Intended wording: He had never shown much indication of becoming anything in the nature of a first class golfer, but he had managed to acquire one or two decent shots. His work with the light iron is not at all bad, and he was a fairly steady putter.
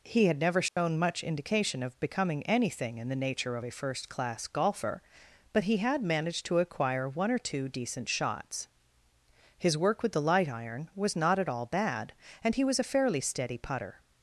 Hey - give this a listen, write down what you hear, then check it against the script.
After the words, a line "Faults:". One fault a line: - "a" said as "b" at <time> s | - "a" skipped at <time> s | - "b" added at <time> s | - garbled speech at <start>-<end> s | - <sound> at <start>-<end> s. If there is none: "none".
He had never shown much indication of becoming anything in the nature of a first class golfer, but he had managed to acquire one or two decent shots. His work with the light iron was not at all bad, and he was a fairly steady putter.
Faults:
- dropout at 0.7-0.8 s
- "is" said as "was" at 10.9 s